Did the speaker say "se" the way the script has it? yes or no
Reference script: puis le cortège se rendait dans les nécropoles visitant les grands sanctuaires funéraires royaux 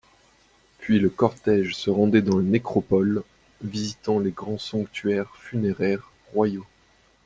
yes